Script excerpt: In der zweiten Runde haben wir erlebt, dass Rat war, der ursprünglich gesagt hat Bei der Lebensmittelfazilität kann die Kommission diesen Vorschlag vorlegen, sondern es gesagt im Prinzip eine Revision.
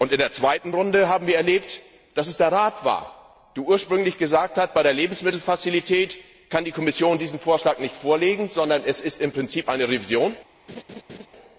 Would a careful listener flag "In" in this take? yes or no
no